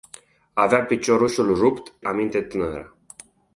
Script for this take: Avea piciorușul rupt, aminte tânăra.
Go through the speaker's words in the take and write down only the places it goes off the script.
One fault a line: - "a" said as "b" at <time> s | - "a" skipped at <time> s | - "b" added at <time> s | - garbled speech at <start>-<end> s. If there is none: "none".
none